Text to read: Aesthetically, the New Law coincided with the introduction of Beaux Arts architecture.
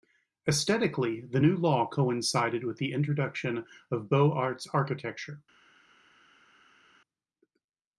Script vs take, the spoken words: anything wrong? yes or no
no